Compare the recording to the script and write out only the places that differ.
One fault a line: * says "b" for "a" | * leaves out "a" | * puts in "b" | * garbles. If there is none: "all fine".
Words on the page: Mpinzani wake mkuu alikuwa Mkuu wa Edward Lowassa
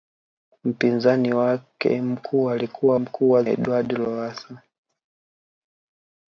all fine